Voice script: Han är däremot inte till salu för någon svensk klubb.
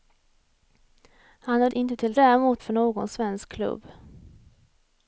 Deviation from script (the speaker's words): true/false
true